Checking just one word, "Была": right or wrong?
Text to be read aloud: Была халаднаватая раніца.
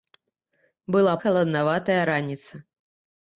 right